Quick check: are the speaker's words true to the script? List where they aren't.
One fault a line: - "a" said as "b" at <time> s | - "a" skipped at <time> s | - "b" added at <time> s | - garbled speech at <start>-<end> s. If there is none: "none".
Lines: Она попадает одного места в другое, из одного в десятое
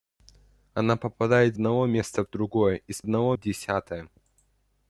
none